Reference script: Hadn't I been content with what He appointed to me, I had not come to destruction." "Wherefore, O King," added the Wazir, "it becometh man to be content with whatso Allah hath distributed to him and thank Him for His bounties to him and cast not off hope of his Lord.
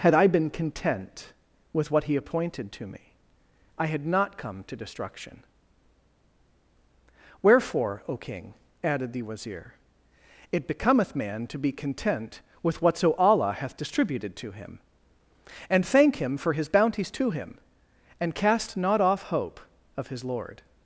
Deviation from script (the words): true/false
true